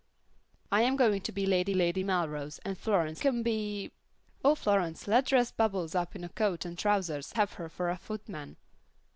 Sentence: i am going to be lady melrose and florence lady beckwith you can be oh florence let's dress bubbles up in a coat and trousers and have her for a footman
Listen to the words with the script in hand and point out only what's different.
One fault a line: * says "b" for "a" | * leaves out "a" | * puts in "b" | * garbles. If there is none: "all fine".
* puts in "lady"
* leaves out "lady beckwith you"
* leaves out "and"